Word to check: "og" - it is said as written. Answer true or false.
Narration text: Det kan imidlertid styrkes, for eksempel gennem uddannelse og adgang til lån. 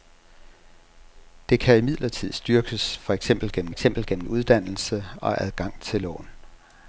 true